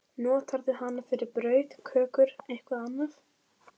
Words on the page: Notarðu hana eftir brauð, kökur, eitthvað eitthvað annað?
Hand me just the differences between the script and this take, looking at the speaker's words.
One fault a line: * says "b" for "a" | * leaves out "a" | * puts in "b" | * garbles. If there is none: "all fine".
* says "fyrir" for "eftir"
* leaves out "eitthvað"